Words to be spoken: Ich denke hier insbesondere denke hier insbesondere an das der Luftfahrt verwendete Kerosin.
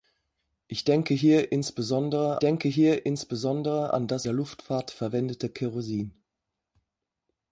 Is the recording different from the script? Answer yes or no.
no